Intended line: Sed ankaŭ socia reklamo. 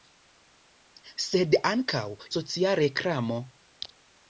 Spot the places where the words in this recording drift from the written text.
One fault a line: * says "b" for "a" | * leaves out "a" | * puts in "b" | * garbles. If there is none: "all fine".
all fine